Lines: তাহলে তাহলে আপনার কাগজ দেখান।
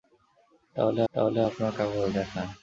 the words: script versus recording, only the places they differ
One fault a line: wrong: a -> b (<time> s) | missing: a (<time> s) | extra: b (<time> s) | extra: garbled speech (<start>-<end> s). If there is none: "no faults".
no faults